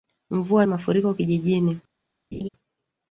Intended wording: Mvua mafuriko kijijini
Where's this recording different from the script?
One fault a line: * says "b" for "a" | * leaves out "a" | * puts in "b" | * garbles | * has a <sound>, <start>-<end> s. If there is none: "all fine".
* has a laugh, 2.3-2.5 s